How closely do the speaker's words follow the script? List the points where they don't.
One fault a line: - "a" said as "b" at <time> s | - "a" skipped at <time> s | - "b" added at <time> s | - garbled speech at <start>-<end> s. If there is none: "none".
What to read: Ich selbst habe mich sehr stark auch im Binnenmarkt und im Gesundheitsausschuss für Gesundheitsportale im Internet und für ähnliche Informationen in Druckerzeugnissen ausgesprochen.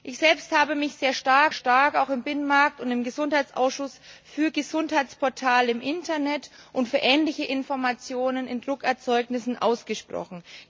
- "stark" added at 1.5 s